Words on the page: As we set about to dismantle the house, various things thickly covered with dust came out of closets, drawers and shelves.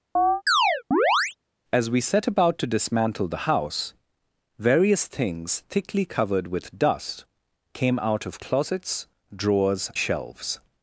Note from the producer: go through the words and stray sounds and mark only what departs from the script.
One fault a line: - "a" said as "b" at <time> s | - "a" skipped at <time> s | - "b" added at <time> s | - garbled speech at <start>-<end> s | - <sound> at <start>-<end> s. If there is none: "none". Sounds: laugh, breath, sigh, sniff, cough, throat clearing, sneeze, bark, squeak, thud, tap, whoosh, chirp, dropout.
- chirp at 0.2-1.4 s
- "and" skipped at 9.9 s